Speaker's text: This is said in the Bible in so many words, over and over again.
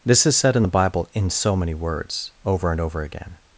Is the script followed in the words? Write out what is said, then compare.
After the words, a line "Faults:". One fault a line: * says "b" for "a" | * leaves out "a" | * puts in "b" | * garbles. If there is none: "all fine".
This is said in the Bible in so many words, over and over again.
Faults:
all fine